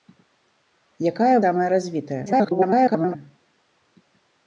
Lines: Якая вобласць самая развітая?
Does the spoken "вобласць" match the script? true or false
false